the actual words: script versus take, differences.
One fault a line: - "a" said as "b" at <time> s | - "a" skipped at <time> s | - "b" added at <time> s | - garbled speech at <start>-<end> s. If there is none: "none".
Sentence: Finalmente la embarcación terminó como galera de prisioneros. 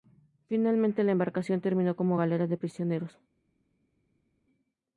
none